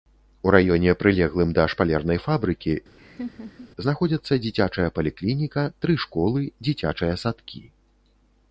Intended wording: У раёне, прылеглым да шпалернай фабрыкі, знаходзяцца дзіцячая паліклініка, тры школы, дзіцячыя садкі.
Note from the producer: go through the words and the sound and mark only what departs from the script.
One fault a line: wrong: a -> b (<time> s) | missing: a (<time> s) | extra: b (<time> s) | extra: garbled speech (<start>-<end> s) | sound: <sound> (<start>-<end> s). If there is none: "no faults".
sound: laugh (3.0-3.7 s)